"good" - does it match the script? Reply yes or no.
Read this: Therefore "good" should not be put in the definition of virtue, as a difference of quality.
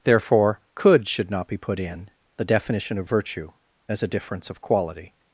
no